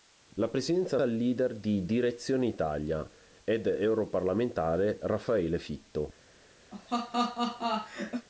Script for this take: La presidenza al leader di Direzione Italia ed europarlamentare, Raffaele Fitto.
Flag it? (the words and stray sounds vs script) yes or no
yes